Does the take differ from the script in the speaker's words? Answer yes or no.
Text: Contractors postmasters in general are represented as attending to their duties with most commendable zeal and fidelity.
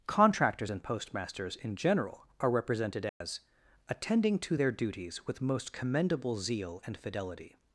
yes